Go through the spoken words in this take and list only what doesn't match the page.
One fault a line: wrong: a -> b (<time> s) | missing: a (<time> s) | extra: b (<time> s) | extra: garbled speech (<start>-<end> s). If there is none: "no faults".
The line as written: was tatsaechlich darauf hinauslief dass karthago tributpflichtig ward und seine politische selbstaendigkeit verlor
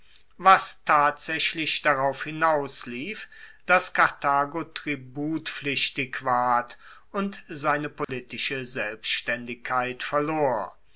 no faults